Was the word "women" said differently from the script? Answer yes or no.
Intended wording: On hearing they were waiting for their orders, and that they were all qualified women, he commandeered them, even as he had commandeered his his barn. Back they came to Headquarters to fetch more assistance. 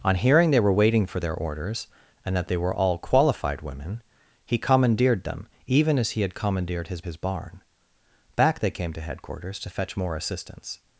no